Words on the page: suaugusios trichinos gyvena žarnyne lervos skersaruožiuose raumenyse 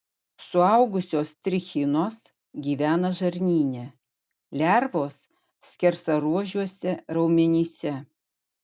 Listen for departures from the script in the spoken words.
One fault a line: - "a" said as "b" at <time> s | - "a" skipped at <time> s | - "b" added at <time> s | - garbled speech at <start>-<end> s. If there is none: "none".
none